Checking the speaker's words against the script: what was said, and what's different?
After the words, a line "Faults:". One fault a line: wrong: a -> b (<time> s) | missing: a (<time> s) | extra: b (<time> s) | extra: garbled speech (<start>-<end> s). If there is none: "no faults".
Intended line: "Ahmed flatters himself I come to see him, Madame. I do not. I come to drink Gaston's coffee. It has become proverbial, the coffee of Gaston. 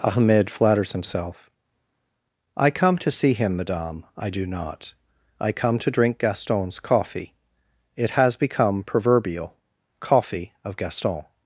"Ahmed flatters himself I come to see him, Madame. I do not. I come to drink Gaston's coffee. It has become proverbial, coffee of Gaston.
Faults:
missing: the (9.6 s)